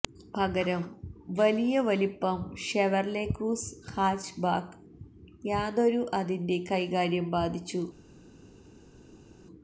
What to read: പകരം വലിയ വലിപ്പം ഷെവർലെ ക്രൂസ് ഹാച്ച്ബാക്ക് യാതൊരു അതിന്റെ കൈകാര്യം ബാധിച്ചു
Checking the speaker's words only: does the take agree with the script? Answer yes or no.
yes